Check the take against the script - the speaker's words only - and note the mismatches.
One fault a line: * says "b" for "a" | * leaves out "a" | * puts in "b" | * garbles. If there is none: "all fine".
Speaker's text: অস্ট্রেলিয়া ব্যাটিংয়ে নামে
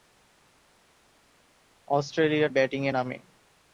all fine